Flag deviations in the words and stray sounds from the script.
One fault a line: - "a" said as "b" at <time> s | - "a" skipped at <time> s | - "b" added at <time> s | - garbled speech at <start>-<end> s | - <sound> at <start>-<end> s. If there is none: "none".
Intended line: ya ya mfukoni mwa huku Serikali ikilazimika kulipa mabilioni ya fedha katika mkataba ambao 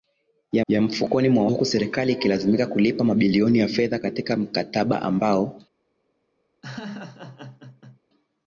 - laugh at 6.6-8.0 s